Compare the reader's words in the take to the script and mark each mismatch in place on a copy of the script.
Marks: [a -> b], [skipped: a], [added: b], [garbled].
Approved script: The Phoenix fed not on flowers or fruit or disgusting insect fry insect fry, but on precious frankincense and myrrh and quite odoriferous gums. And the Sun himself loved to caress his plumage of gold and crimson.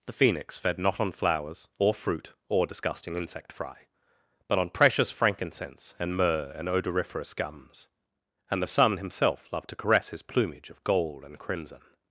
The Phoenix fed not on flowers or fruit or disgusting insect fry [skipped: insect fry,] but on precious frankincense and myrrh and [skipped: quite] odoriferous gums. And the Sun himself loved to caress his plumage of gold and crimson.